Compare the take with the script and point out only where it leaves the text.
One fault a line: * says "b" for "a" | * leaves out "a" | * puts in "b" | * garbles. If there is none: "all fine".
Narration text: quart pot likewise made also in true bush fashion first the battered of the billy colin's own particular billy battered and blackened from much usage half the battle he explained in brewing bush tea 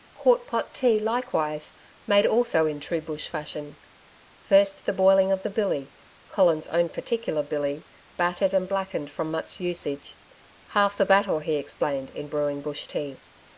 * puts in "tea"
* says "boiling" for "battered"